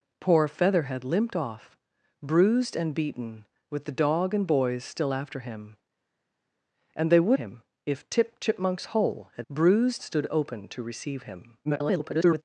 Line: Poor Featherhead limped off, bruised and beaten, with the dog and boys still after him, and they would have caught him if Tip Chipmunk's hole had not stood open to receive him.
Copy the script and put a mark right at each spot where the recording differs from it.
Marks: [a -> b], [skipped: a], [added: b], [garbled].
Poor Featherhead limped off, bruised and beaten, with the dog and boys still after him, and they would [skipped: have caught] him if Tip Chipmunk's hole had [not -> bruised] stood open to receive him. [garbled]